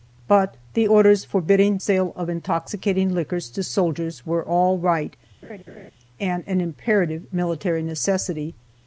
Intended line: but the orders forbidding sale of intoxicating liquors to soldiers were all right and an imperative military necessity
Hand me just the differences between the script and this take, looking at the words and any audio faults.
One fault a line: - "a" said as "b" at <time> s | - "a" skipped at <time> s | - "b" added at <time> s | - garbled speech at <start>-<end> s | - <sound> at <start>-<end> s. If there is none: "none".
- laugh at 5.4-5.9 s